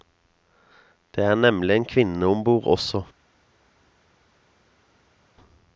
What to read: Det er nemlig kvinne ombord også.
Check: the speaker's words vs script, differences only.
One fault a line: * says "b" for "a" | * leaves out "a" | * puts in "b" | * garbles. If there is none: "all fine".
* puts in "en"